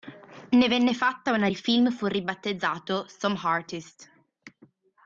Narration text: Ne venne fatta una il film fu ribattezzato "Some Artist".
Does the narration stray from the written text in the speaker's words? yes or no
no